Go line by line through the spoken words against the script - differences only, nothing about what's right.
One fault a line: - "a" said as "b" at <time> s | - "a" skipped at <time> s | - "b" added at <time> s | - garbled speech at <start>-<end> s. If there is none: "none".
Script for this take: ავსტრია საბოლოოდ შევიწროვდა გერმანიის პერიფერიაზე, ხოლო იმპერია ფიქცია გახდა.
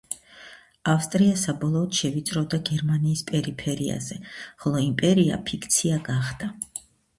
none